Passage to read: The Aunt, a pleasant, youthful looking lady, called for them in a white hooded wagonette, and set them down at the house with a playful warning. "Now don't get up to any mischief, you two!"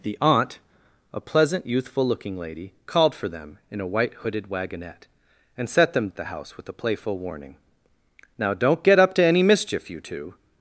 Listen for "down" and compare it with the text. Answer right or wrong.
wrong